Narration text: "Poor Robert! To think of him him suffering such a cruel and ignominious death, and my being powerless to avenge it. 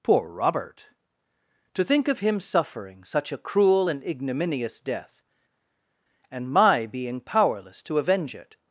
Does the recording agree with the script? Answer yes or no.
no